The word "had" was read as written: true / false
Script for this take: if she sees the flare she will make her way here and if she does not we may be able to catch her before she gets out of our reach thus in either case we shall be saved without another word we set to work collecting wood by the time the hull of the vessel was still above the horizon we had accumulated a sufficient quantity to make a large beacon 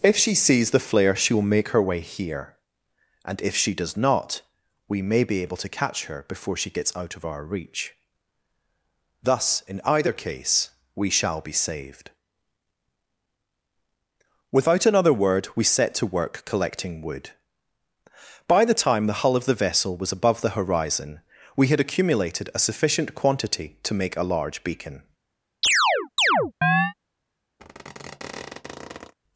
true